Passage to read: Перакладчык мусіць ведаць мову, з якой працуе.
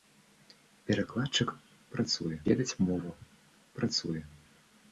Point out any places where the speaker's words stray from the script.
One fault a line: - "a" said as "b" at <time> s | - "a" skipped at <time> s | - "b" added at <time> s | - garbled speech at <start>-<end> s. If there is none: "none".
- "мусіць" said as "працуе" at 1.9 s
- "з якой" skipped at 3.1 s